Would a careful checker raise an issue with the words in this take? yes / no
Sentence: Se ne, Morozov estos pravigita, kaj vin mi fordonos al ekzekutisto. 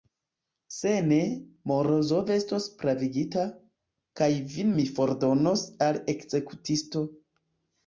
no